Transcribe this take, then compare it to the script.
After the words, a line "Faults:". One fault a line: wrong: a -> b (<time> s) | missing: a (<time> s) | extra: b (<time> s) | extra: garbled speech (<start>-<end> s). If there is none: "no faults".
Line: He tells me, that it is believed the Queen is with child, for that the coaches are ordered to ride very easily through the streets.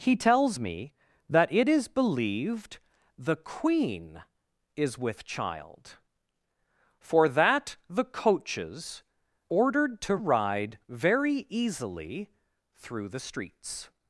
He tells me, that it is believed the Queen is with child, for that the coaches ordered to ride very easily through the streets.
Faults:
missing: are (9.0 s)